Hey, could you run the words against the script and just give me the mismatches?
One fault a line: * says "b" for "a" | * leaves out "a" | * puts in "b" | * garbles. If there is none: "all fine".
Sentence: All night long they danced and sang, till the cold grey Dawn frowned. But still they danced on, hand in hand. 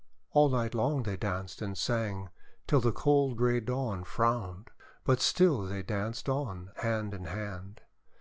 all fine